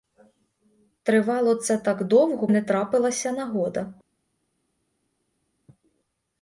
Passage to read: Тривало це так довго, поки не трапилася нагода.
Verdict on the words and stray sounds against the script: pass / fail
fail